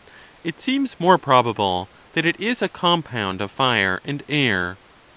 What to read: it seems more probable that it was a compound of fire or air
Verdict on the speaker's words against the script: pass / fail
fail